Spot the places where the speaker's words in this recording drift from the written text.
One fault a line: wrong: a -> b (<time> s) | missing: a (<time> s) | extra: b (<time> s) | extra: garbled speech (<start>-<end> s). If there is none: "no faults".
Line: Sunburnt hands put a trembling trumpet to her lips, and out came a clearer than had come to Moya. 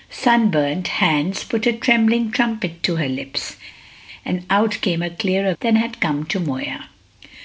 no faults